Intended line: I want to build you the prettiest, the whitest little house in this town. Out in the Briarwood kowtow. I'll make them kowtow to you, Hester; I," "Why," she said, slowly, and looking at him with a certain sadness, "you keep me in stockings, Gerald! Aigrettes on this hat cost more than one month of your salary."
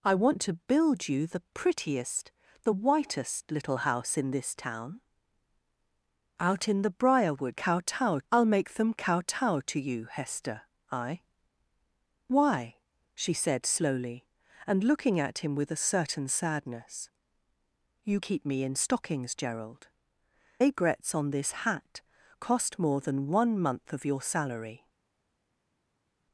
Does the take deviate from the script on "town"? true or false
false